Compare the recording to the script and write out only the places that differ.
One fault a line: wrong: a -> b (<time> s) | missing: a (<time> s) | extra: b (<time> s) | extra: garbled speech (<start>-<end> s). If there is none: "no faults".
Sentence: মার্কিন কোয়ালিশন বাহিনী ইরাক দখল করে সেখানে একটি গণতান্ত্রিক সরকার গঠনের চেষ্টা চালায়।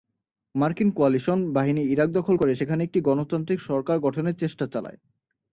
no faults